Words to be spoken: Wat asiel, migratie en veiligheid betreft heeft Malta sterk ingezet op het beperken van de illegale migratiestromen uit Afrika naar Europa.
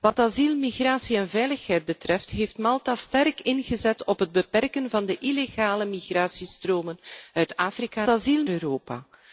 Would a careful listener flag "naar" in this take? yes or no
yes